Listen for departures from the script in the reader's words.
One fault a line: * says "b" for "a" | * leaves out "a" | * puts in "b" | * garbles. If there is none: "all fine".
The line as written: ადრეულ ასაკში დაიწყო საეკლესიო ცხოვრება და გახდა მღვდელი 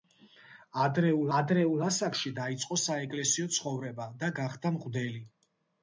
* puts in "ადრეულ"